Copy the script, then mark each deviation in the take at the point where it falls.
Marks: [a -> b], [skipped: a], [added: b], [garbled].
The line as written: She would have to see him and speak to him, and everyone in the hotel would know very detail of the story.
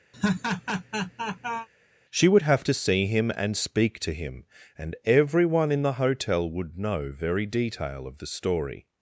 She would have to see him and speak to him, and everyone in the hotel would know very detail of the story.